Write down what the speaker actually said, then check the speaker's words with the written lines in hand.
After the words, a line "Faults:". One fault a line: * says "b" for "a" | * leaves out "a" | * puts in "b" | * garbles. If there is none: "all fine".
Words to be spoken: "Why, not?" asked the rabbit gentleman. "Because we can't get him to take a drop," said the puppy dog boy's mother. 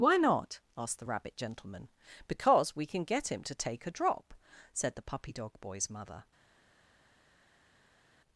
"Why, not?" asked the rabbit gentleman. "Because we can get him to take a drop," said the puppy dog boy's mother.
Faults:
* says "can" for "can't"